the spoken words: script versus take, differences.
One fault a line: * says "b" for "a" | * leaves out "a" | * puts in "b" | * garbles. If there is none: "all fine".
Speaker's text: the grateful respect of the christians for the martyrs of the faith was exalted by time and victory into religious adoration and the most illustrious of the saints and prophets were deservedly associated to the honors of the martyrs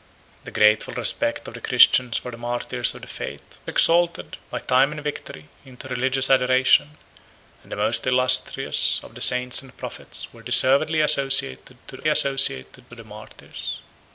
* leaves out "was"
* says "associated" for "honors"